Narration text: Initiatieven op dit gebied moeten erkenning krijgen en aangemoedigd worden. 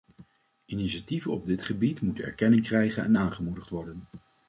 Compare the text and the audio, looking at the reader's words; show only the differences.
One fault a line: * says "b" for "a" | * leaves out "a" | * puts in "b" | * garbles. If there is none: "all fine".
all fine